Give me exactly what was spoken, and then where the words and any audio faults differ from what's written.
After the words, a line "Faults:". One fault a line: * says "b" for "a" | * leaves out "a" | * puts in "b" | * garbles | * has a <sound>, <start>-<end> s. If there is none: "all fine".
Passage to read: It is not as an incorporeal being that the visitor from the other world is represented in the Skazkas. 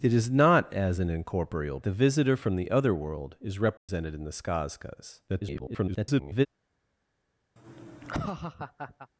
It is not as an incorporeal the visitor from the other world is represented in the Skazkas. [garbled]
Faults:
* leaves out "being that"
* has a dropout, 3.8-3.9 s
* garbles
* has a laugh, 7.6-9.1 s